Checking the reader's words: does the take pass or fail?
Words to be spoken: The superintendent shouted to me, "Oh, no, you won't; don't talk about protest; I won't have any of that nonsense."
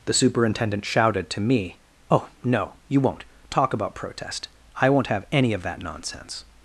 fail